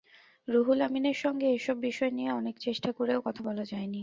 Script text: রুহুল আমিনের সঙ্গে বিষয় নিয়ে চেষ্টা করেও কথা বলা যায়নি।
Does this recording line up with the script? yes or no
no